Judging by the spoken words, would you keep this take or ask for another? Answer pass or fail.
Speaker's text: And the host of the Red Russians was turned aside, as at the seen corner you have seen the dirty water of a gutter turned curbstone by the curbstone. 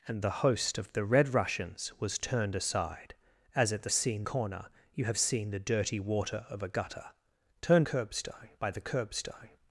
pass